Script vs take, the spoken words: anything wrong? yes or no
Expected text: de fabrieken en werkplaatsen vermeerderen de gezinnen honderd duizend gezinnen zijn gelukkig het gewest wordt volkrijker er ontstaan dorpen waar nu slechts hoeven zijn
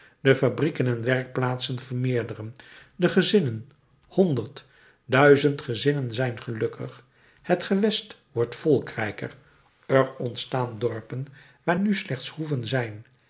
no